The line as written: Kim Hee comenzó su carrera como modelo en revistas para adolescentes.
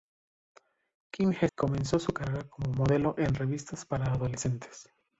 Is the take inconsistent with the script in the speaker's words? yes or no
no